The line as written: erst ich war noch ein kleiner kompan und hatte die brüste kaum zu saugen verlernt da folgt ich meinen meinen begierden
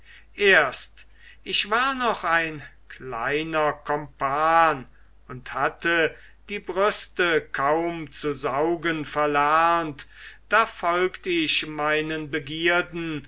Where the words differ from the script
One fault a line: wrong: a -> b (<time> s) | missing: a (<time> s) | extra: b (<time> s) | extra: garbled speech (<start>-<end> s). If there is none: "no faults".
missing: meinen (12.3 s)